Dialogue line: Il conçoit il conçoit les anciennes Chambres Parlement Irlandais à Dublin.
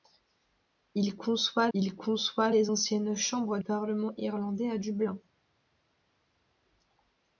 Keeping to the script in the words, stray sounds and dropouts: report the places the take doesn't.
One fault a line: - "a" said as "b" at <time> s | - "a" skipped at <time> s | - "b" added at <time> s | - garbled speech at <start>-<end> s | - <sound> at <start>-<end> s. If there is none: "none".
none